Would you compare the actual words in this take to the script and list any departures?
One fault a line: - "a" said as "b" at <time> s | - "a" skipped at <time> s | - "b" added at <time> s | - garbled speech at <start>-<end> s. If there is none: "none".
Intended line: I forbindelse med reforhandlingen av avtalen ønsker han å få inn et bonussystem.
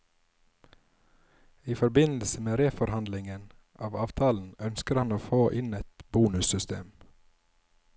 none